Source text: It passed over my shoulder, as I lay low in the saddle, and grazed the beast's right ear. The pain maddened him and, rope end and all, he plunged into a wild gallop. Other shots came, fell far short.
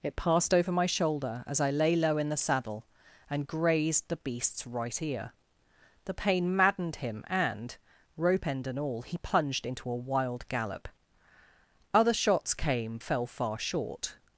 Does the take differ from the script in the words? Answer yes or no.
no